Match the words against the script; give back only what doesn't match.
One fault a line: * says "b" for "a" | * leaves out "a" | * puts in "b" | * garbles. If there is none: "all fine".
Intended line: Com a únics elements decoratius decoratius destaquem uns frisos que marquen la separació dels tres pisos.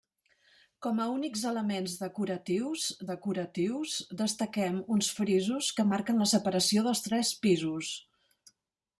all fine